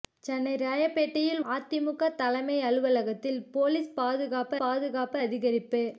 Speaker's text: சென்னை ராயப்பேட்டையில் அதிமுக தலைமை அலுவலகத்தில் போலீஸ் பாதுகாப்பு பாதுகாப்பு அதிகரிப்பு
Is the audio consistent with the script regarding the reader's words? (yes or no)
yes